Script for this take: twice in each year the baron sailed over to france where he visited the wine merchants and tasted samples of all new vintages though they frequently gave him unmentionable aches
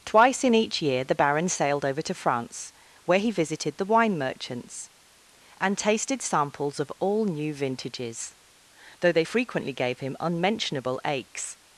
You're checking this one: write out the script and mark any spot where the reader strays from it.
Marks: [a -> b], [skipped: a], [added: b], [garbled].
twice in each year the baron sailed over to france where he visited the wine merchants and tasted samples of all new vintages though they frequently gave him unmentionable aches